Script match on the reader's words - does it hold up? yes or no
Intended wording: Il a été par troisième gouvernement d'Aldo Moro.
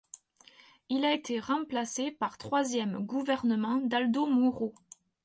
no